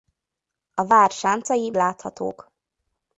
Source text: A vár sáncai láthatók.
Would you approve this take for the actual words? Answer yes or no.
yes